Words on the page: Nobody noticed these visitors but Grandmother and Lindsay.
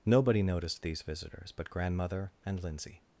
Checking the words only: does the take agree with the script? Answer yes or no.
yes